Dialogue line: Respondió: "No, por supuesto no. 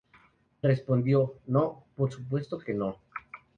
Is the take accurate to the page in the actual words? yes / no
no